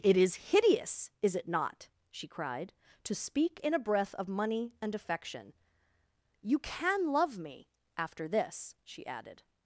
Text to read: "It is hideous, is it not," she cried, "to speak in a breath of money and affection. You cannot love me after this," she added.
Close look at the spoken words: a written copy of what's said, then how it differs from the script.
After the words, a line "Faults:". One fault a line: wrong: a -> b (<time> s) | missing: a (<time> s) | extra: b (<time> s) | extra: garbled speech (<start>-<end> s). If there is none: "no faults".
"It is hideous, is it not," she cried, "to speak in a breath of money and affection. You can love me after this," she added.
Faults:
wrong: cannot -> can (6.6 s)